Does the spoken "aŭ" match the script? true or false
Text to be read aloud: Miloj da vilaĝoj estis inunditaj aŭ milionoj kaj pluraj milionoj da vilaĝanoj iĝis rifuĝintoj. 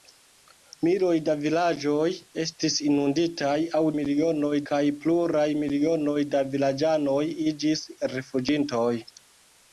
true